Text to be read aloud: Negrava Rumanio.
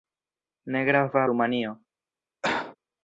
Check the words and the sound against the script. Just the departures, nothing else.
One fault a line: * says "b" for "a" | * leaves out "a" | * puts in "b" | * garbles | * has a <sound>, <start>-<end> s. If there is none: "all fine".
* has a cough, 2.4-2.8 s